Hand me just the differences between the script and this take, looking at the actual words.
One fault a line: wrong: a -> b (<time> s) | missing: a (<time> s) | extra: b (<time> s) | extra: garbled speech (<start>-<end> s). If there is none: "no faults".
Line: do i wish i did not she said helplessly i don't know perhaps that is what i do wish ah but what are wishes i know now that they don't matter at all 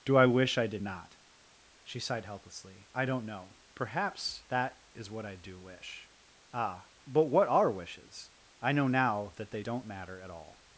wrong: said -> sighed (2.0 s)